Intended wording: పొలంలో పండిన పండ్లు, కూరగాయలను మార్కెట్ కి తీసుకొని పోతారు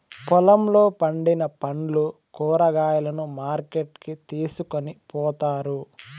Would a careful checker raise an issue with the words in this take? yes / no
no